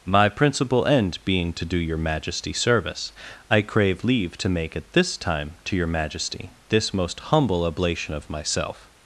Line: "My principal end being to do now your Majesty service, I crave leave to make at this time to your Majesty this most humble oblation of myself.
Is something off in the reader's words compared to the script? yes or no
yes